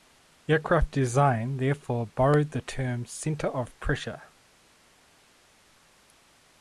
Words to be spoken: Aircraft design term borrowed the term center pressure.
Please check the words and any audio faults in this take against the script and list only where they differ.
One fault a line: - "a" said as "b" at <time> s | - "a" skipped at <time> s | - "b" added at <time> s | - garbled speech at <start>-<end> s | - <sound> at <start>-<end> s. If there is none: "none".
- "term" said as "therefore" at 1.6 s
- "of" added at 3.5 s